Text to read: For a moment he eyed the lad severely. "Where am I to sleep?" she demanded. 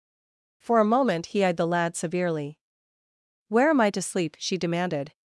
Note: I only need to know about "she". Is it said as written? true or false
true